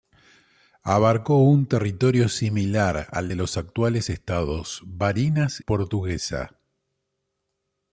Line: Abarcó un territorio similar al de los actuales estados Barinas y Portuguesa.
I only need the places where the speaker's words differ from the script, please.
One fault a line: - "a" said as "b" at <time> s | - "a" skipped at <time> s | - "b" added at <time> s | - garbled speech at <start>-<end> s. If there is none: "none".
- "y" skipped at 5.6 s